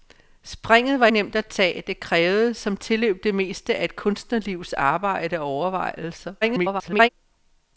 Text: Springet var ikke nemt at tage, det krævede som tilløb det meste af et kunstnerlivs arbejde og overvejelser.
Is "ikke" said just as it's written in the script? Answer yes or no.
no